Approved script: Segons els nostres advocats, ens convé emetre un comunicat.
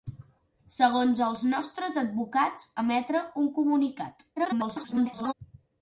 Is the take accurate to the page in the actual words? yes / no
no